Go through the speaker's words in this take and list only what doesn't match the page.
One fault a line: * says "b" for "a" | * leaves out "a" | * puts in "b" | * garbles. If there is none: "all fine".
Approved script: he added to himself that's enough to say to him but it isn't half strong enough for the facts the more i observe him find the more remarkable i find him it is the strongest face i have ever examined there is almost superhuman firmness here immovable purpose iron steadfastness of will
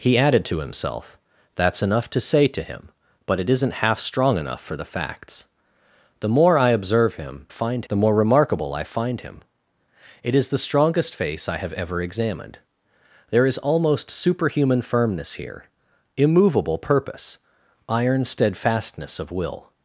all fine